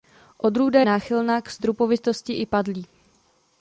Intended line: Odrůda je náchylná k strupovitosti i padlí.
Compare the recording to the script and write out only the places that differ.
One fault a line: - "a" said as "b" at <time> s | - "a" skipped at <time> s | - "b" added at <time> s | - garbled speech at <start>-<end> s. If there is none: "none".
- "je" skipped at 0.8 s